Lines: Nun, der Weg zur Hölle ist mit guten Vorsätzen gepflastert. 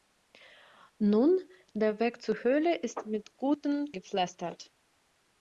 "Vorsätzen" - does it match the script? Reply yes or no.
no